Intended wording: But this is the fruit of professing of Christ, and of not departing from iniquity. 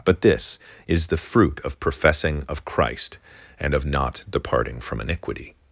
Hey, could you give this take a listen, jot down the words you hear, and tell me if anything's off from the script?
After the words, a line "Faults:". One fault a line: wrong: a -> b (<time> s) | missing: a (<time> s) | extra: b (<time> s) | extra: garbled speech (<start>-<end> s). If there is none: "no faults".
But this is the fruit of professing of Christ, and of not departing from iniquity.
Faults:
no faults